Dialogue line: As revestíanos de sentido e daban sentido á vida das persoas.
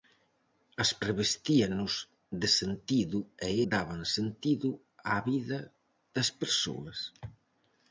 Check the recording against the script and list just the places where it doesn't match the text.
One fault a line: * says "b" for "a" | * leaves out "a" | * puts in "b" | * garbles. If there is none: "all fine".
all fine